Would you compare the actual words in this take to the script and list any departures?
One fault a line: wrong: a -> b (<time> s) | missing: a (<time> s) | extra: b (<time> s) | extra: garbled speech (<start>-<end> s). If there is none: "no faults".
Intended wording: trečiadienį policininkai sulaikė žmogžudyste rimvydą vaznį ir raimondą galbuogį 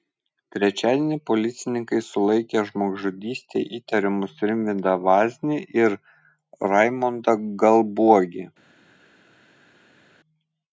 extra: įtariamus (3.8 s)